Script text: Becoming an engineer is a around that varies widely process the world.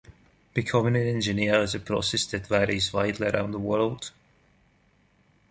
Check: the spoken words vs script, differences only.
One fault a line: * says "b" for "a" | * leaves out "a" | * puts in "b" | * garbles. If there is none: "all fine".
* says "process" for "around"
* says "around" for "process"